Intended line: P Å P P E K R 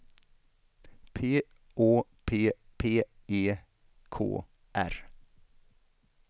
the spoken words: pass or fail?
pass